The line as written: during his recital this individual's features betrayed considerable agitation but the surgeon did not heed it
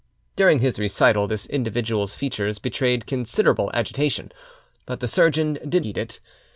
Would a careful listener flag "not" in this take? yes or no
yes